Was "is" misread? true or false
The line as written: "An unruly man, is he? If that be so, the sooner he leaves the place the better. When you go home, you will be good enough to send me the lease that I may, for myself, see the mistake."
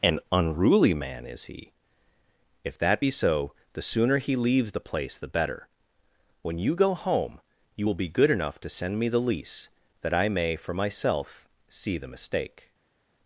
false